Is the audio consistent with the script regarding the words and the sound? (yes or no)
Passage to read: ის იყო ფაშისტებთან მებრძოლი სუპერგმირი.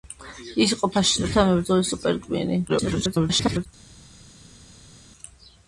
no